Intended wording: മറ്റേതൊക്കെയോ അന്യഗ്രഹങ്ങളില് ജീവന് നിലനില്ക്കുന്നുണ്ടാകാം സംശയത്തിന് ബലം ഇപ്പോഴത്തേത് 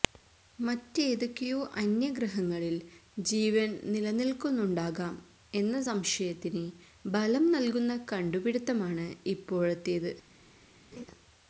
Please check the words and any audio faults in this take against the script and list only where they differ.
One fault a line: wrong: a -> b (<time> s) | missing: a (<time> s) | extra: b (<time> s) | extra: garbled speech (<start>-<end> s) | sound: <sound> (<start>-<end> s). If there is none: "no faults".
extra: എന്ന (5.5 s)
extra: നല്കുന്ന കണ്ടുപിടുത്തമാണ് (7.5 s)
sound: laugh (10.9-11.1 s)